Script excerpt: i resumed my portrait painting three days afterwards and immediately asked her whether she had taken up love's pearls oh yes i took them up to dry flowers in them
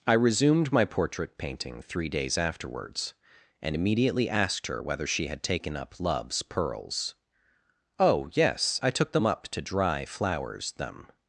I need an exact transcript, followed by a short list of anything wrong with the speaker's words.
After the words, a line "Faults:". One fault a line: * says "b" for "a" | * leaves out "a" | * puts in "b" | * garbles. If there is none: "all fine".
i resumed my portrait painting three days afterwards and immediately asked her whether she had taken up love's pearls oh yes i took them up to dry flowers them
Faults:
* leaves out "in"